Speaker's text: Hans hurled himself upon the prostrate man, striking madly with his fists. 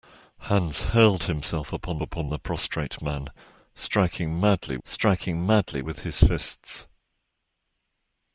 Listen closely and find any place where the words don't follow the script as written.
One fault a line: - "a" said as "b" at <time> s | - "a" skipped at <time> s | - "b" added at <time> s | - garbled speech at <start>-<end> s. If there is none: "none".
- "upon" added at 2.0 s
- "striking madly" added at 4.8 s